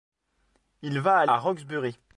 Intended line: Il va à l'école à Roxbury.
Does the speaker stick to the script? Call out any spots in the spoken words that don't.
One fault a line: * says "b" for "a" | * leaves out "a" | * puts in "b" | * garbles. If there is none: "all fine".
* leaves out "l'école"